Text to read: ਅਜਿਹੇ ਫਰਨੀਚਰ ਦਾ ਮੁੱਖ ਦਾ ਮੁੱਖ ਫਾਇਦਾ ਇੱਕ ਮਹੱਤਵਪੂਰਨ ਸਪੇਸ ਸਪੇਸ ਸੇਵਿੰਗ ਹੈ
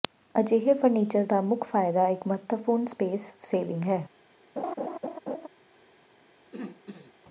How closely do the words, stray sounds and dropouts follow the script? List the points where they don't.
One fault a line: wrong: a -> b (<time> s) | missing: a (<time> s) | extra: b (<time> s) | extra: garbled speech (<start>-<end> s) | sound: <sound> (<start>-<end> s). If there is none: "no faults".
missing: ਦਾ ਮੁੱਖ (1.6 s)
missing: ਸਪੇਸ (3.3 s)
sound: laugh (4.6-5.5 s)
sound: throat clearing (6.5-7.1 s)